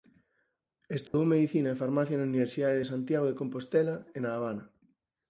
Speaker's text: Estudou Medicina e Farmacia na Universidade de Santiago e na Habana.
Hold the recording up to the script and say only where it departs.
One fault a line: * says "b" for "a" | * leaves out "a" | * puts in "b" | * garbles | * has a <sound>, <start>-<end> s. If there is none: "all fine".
* has a dropout, 1.1-1.1 s
* puts in "de Compostela"